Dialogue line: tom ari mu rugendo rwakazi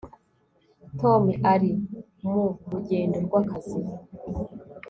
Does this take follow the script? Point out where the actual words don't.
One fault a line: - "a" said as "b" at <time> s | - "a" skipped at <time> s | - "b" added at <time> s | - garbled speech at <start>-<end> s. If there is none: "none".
none